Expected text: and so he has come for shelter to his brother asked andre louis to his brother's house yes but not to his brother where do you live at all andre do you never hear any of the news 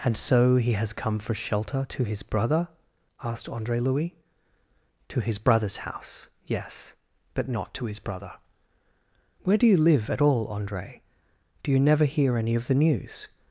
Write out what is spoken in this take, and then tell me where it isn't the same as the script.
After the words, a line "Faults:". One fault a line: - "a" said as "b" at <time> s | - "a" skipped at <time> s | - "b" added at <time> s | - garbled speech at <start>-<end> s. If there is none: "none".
and so he has come for shelter to his brother asked andre louis to his brother's house yes but not to his brother where do you live at all andre do you never hear any of the news
Faults:
none